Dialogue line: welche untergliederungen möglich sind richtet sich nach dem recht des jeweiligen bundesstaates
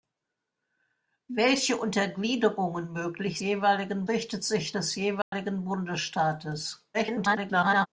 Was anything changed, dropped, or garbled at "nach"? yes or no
yes